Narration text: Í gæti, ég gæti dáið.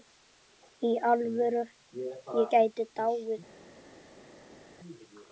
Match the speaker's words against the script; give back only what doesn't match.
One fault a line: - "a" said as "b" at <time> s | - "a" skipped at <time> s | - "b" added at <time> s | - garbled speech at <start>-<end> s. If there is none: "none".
- "gæti" said as "alvöru" at 1.1 s